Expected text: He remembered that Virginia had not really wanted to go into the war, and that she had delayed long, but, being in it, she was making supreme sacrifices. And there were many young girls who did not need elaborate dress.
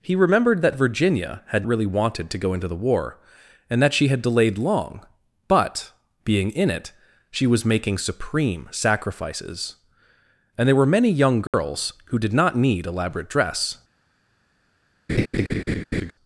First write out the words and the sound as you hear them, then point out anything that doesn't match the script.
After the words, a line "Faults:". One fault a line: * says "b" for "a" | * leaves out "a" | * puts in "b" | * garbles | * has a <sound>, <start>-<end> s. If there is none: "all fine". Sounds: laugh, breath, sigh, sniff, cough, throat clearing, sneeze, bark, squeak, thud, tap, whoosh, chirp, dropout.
He remembered that Virginia had really wanted to go into the war, and that she had delayed long, but, being in it, she was making supreme sacrifices. And there were many young girls who did not need elaborate dress.
Faults:
* leaves out "not"
* has a dropout, 11.5-11.5 s
* has a laugh, 15.1-16.1 s